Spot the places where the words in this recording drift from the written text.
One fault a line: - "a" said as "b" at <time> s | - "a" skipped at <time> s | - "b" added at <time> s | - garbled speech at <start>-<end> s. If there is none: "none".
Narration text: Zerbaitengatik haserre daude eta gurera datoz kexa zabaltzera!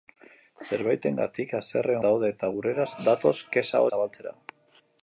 none